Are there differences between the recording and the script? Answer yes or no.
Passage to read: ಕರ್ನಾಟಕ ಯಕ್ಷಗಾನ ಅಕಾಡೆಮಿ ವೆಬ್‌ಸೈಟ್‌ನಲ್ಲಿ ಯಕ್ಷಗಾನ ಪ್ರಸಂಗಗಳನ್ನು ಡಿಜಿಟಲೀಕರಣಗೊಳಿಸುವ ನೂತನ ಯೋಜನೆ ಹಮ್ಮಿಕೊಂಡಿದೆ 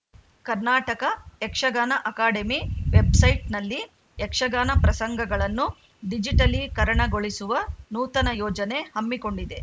no